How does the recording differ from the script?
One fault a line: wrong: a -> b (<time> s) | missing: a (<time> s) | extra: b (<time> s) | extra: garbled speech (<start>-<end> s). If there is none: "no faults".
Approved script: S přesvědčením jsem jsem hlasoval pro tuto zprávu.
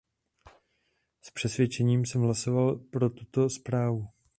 missing: jsem (2.2 s)